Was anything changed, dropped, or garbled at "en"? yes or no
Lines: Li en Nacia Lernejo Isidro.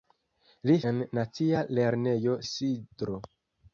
no